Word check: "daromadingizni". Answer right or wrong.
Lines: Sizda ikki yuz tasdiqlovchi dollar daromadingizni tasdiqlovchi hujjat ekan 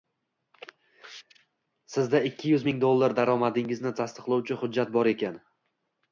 right